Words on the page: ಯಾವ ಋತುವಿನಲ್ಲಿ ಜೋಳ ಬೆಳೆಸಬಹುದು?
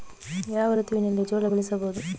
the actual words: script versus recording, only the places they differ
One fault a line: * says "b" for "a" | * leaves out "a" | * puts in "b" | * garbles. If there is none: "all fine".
all fine